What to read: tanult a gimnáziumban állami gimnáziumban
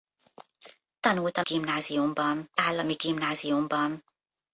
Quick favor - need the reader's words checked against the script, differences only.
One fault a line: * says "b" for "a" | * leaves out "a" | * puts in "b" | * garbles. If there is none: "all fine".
all fine